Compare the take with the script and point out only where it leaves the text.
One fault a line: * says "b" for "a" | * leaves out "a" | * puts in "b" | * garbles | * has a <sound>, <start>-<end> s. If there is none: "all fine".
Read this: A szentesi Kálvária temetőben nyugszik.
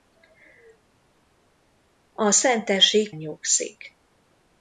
* leaves out "Kálvária temetőben"